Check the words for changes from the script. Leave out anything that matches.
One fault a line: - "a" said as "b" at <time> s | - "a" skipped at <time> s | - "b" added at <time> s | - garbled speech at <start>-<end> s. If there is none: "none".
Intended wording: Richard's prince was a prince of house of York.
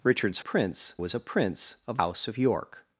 none